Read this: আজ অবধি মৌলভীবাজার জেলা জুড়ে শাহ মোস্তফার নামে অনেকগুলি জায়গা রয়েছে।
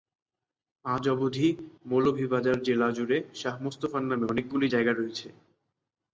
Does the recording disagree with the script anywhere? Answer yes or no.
no